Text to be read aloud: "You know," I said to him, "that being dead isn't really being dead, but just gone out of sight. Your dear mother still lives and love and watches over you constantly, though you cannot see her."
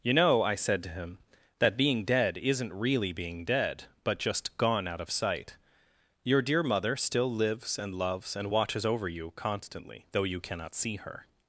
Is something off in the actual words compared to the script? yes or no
yes